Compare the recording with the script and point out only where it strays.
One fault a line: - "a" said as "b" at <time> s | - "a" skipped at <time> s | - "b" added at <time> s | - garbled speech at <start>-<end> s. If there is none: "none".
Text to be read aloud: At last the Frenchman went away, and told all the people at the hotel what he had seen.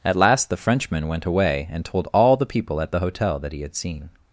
- "what" said as "that" at 3.4 s